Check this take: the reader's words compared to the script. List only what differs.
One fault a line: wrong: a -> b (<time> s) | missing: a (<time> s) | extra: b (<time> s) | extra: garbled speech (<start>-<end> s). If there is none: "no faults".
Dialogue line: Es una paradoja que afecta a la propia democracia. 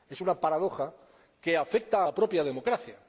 no faults